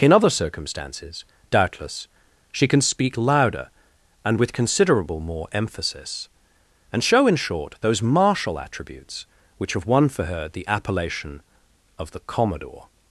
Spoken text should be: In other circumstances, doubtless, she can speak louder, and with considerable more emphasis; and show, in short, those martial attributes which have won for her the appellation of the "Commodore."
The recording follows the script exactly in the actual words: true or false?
true